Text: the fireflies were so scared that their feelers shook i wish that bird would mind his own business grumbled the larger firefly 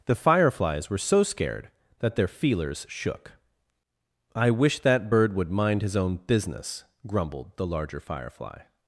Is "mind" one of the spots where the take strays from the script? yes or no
no